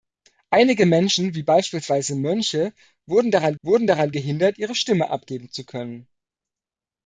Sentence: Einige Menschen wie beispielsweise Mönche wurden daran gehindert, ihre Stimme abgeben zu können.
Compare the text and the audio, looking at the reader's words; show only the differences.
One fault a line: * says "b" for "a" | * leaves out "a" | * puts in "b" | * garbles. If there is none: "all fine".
* puts in "wurden daran"